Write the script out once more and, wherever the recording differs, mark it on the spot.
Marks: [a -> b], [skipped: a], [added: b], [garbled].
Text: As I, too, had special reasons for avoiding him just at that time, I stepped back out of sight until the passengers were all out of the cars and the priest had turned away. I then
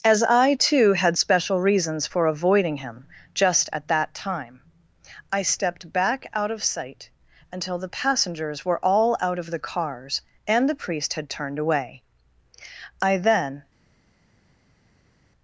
As I, too, had special reasons for avoiding him just at that time, I stepped back out of sight until the passengers were all out of the cars and the priest had turned away. I then